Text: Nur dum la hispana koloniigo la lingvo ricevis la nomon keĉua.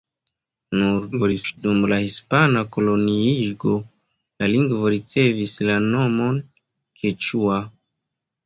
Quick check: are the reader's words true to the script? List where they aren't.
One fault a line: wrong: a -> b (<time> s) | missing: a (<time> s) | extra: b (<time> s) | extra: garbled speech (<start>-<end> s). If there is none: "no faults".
extra: garbled speech (1.1-1.6 s)